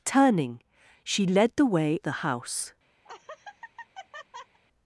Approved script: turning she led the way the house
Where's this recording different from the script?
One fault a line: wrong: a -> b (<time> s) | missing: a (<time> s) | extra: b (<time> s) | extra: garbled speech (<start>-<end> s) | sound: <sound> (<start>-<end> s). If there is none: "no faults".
sound: laugh (3.0-4.6 s)